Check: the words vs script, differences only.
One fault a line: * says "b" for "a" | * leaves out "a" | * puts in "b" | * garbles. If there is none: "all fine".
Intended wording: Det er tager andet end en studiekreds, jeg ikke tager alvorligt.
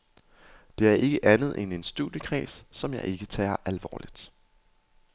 * says "ikke" for "tager"
* puts in "som"